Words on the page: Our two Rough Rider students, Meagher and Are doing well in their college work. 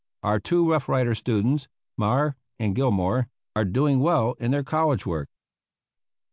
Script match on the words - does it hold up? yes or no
no